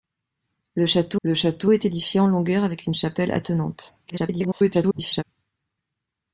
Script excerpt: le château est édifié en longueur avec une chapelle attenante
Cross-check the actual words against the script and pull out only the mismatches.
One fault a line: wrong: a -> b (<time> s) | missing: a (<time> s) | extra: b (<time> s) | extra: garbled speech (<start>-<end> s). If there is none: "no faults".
extra: le château (1.2 s)
extra: garbled speech (4.1-5.2 s)